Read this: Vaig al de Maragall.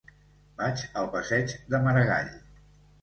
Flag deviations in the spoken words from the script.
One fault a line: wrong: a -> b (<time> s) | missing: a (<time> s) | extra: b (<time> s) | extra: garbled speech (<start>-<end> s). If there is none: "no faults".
extra: passeig (1.2 s)